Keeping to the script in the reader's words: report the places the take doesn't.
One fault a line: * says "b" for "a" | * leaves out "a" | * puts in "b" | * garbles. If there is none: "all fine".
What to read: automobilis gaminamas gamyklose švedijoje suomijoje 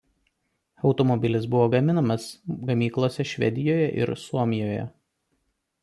* puts in "buvo"
* puts in "ir"